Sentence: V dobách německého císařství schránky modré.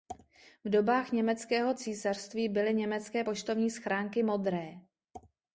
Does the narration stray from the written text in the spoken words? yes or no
yes